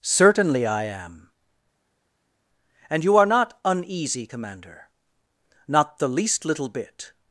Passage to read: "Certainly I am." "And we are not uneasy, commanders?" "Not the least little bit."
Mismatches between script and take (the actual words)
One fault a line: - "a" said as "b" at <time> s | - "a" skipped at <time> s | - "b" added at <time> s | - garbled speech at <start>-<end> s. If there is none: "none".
- "we" said as "you" at 3.0 s
- "commanders" said as "commander" at 4.2 s